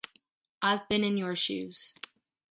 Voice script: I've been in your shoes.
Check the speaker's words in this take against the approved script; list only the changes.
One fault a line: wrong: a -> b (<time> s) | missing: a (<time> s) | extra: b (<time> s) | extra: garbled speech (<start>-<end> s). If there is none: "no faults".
no faults